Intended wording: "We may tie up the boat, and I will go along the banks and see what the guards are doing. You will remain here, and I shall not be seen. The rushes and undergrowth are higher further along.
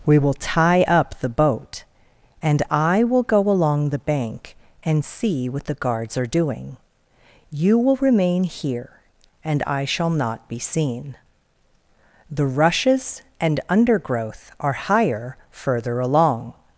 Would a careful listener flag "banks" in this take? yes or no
yes